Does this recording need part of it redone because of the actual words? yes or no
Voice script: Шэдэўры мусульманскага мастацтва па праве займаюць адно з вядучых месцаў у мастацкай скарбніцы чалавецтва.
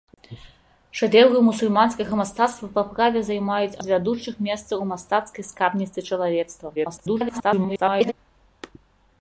yes